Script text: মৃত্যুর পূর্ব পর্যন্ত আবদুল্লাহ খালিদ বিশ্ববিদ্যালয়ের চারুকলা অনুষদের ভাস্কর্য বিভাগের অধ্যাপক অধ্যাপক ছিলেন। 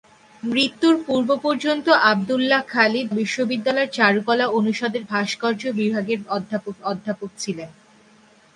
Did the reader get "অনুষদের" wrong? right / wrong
right